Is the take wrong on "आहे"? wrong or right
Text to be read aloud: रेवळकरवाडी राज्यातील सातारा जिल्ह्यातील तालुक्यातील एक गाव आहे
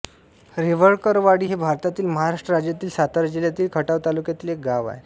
right